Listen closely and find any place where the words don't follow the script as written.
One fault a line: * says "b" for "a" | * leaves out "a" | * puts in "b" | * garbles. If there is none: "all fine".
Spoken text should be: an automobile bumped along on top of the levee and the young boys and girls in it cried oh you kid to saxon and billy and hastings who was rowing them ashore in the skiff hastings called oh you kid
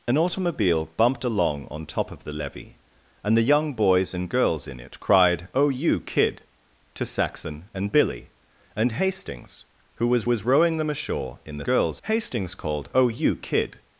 * puts in "was"
* says "girls" for "skiff"